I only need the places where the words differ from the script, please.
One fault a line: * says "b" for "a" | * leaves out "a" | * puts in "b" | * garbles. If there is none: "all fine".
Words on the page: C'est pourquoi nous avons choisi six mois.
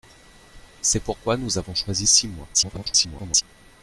* garbles